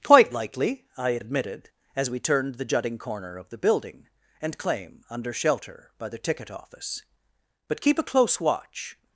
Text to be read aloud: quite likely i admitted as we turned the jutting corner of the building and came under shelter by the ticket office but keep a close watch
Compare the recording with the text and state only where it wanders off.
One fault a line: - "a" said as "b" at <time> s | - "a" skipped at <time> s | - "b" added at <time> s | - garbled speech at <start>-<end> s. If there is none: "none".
- "came" said as "claim" at 4.6 s